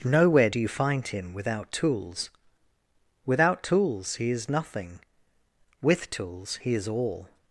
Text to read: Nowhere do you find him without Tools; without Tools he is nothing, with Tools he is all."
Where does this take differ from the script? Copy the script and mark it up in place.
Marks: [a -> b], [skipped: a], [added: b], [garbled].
Nowhere do you find him without Tools; without Tools he is nothing, with Tools he is all."